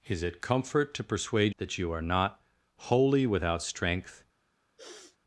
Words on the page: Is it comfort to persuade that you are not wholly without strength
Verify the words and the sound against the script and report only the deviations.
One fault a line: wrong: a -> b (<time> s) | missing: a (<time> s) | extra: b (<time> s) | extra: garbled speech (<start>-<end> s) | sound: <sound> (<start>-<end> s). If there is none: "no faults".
sound: sniff (4.8-5.2 s)